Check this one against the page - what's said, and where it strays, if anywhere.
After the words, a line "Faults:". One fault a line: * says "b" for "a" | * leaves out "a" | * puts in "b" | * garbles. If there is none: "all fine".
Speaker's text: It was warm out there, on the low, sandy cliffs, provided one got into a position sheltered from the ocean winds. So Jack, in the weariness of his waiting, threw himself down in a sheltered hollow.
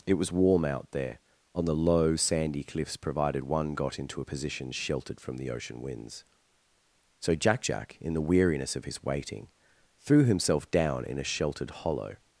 It was warm out there, on the low, sandy cliffs, provided one got into a position sheltered from the ocean winds. So Jack Jack, in the weariness of his waiting, threw himself down in a sheltered hollow.
Faults:
* puts in "Jack"